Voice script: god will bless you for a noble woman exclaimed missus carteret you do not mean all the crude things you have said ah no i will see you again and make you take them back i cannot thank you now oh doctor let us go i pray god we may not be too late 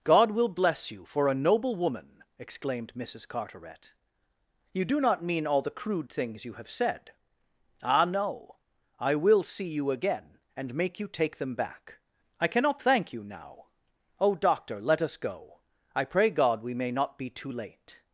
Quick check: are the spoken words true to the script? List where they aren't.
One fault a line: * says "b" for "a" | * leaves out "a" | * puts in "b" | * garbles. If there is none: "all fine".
all fine